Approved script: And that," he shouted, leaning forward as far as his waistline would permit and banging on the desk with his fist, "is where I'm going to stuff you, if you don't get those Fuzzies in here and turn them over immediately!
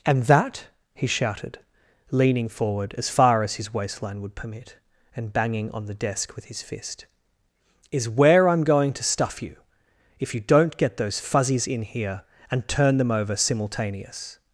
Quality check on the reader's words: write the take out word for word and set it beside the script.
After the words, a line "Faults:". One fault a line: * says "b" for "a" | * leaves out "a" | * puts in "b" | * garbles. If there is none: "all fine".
And that," he shouted, leaning forward as far as his waistline would permit and banging on the desk with his fist, "is where I'm going to stuff you, if you don't get those Fuzzies in here and turn them over simultaneous!
Faults:
* says "simultaneous" for "immediately"